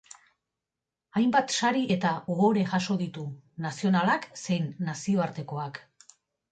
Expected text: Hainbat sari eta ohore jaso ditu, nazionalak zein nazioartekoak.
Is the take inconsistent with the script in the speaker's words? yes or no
no